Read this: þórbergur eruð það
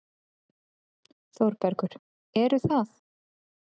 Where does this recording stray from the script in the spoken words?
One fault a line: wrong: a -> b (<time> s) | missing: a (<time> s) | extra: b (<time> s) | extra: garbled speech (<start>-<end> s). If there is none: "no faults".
no faults